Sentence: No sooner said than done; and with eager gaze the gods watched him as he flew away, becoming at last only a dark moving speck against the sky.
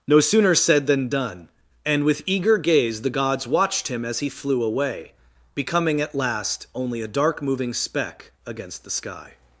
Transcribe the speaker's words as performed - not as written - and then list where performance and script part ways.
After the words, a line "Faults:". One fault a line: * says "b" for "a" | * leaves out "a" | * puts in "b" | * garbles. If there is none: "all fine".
No sooner said than done; and with eager gaze the gods watched him as he flew away, becoming at last only a dark moving speck against the sky.
Faults:
all fine